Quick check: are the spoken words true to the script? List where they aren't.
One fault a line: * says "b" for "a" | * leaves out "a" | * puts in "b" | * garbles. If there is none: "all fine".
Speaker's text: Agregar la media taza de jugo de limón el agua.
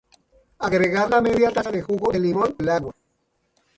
all fine